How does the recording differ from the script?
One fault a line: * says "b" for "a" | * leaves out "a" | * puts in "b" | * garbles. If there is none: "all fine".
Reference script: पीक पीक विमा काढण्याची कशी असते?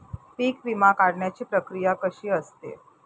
* leaves out "पीक"
* puts in "प्रक्रिया"